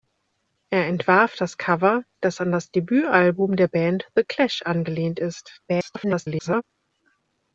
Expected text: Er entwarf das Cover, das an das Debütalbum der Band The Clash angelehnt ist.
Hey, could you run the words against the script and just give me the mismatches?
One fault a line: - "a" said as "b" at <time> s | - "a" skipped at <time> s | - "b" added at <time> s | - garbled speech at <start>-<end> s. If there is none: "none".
- garbled speech at 5.7-6.6 s